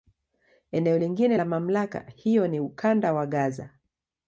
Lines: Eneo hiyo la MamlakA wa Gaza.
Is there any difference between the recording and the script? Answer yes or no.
yes